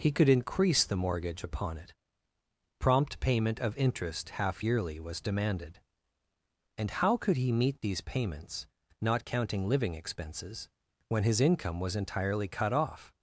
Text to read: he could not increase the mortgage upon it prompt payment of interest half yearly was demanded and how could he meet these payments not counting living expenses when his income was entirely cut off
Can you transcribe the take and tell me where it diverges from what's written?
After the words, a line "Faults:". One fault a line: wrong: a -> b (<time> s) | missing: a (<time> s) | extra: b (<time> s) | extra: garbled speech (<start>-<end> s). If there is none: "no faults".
he could increase the mortgage upon it prompt payment of interest half yearly was demanded and how could he meet these payments not counting living expenses when his income was entirely cut off
Faults:
missing: not (0.3 s)